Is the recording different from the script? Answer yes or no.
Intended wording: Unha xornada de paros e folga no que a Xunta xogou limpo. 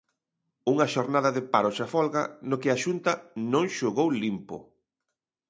yes